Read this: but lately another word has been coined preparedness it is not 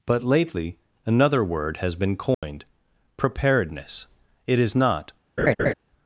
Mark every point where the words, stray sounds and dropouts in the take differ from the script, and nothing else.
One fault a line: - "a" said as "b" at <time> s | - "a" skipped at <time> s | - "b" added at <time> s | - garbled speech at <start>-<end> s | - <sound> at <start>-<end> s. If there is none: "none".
- dropout at 2.3-2.4 s
- laugh at 5.4-5.7 s